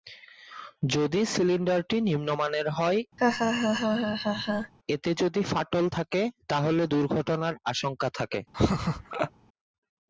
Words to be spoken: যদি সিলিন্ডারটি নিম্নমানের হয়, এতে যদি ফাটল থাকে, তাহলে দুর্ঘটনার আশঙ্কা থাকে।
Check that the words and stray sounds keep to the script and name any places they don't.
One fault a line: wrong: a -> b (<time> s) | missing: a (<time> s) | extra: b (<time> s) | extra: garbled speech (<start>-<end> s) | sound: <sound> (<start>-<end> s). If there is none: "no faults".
sound: laugh (3.2-4.7 s)
sound: laugh (8.5-9.3 s)